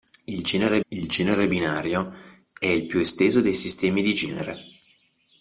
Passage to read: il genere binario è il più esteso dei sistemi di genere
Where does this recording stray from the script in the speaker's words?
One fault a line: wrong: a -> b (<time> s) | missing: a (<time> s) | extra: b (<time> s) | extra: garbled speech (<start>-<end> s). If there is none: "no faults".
extra: il genere (0.9 s)